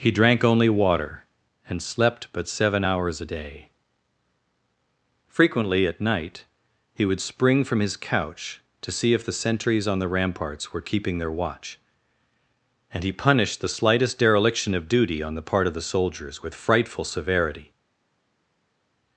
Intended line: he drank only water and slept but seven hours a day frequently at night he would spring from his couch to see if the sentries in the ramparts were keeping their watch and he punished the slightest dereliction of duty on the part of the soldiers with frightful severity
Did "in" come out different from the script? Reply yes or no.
yes